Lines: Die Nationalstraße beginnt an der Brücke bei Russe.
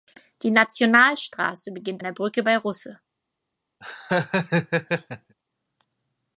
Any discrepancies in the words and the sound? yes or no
yes